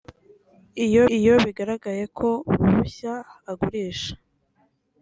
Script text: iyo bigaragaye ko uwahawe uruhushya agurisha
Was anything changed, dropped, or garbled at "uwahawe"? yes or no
yes